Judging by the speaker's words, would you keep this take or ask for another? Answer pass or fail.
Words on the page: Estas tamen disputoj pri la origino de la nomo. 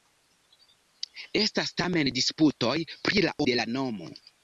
fail